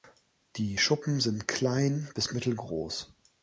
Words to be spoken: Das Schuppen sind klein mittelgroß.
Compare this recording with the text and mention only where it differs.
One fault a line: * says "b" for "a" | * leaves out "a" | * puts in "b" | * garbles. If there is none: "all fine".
* says "Die" for "Das"
* puts in "bis"